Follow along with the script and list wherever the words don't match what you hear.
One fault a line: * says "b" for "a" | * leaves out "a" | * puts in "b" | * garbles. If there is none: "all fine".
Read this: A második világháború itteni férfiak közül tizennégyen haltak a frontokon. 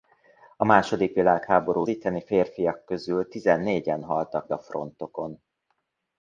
all fine